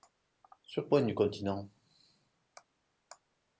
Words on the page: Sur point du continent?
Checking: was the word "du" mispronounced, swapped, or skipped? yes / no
no